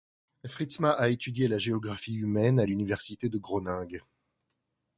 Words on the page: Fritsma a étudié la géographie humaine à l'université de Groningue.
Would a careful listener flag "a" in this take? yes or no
no